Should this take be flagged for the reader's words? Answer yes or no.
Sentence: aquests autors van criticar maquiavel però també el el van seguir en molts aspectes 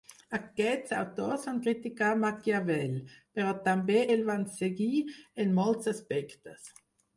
yes